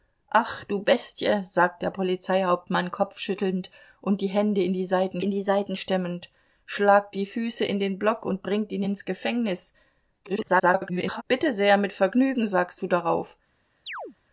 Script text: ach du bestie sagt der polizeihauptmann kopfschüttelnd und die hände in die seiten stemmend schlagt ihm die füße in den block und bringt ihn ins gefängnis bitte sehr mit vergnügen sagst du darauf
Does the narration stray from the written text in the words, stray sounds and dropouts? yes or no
yes